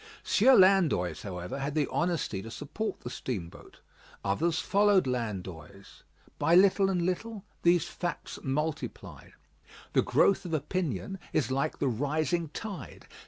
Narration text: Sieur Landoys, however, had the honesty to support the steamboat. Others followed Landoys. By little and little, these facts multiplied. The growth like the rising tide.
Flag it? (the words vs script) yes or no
yes